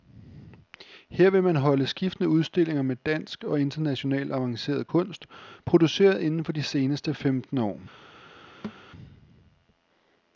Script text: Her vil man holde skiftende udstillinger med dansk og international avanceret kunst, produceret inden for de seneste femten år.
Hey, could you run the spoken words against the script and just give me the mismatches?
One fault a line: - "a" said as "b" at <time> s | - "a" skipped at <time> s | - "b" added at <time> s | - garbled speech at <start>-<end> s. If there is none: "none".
none